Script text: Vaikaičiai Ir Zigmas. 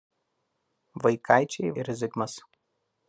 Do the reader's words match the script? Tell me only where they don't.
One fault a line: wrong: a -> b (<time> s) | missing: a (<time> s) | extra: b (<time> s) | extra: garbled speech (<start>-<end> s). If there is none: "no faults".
no faults